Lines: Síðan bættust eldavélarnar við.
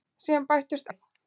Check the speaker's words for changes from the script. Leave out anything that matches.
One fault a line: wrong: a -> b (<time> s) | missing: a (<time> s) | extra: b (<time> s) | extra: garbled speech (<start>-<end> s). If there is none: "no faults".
missing: eldavélarnar (0.9 s)